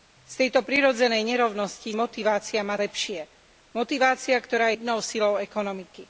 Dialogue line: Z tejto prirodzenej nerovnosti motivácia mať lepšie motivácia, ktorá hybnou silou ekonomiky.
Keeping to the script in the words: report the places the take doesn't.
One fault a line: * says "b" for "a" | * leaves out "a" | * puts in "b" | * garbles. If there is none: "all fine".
all fine